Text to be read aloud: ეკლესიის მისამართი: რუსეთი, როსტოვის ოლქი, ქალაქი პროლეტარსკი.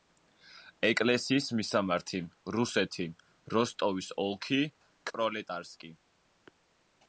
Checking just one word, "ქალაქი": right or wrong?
wrong